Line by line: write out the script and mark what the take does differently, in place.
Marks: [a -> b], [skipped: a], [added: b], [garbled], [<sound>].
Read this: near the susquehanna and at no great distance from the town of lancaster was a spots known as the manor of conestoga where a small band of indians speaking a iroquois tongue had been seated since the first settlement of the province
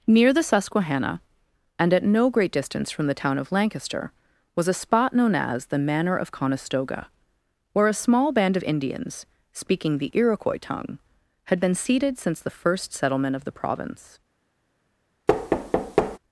near the susquehanna and at no great distance from the town of lancaster was a [spots -> spot] known as the manor of conestoga where a small band of indians speaking [a -> the] iroquois tongue had been seated since the first settlement of the province [thud]